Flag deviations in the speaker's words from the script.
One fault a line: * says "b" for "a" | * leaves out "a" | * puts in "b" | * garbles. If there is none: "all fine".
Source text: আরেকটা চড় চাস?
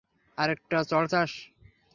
all fine